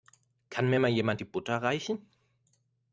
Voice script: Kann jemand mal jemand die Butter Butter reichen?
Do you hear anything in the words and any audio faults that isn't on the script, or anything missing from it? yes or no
yes